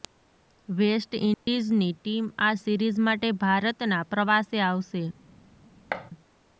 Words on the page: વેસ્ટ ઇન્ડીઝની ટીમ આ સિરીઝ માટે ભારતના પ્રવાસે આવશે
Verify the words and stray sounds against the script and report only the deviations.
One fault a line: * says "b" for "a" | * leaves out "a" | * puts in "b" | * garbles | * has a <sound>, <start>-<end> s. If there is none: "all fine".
* has a dropout, 1.3-1.5 s
* has a thud, 5.9-6.1 s